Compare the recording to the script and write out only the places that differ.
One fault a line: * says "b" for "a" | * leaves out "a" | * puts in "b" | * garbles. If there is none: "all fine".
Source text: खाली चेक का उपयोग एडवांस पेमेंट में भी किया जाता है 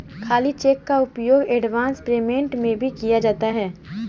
all fine